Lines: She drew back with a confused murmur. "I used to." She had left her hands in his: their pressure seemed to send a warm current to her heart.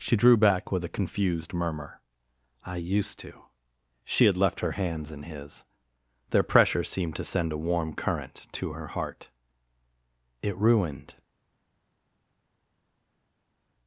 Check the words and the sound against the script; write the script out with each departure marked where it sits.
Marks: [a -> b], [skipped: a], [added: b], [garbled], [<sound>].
She drew back with a confused murmur. "I used to." She had left her hands in his: their pressure seemed to send a warm current to her heart. [added: It ruined]